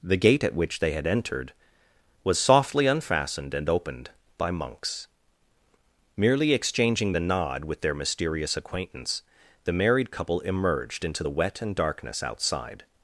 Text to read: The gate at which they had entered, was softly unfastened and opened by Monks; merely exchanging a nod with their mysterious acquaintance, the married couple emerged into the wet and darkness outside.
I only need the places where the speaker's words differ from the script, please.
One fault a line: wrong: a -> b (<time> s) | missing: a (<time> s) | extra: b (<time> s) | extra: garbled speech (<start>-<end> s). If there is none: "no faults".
wrong: a -> the (7.1 s)